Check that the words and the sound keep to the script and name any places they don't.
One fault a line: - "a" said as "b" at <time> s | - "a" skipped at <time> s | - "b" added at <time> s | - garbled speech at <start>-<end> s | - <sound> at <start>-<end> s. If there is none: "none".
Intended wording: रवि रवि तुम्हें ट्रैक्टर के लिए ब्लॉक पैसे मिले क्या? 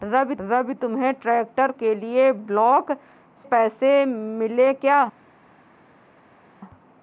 none